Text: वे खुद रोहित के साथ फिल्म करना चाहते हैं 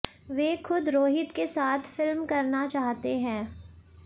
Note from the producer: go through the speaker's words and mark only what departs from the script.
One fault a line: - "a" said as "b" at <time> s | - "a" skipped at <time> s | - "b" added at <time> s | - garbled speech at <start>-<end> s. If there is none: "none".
none